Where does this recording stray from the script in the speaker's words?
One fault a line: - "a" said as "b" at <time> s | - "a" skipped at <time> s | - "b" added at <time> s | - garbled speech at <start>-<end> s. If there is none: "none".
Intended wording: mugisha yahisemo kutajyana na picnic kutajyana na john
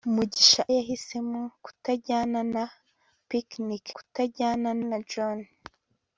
none